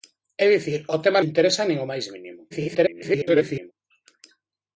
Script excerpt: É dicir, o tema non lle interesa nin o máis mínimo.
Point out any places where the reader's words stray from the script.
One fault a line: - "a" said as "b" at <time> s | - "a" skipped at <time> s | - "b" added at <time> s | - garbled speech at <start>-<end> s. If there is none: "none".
- "non" skipped at 1.2 s
- garbled speech at 2.5-3.7 s